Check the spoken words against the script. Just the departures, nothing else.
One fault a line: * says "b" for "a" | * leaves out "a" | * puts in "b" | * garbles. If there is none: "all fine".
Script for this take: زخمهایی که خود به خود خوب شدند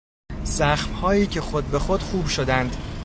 all fine